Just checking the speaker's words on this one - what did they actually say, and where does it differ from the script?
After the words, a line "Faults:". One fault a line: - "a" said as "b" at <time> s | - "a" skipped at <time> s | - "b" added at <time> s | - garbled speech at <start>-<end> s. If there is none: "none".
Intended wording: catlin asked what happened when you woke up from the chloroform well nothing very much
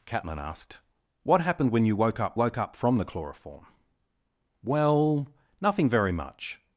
catlin asked what happened when you woke up woke up from the chloroform well nothing very much
Faults:
- "woke up" added at 2.3 s